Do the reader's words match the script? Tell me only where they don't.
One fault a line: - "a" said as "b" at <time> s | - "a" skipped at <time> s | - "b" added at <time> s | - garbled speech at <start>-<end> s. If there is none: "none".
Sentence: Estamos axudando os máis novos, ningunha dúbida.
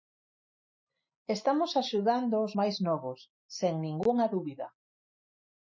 - "sen" added at 3.6 s